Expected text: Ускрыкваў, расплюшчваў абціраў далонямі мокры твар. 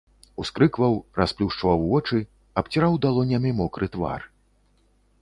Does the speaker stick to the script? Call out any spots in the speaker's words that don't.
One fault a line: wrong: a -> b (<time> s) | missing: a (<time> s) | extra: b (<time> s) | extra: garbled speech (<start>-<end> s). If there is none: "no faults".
extra: вочы (1.9 s)